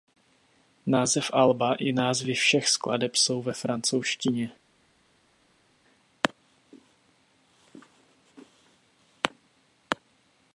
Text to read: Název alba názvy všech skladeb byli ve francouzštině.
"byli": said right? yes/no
no